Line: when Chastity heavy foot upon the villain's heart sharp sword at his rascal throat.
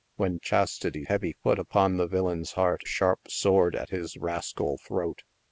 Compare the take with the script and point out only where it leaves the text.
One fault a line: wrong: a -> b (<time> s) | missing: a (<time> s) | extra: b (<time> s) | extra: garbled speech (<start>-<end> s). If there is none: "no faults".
no faults